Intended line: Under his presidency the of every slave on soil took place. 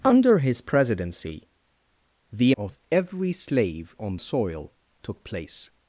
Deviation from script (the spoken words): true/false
false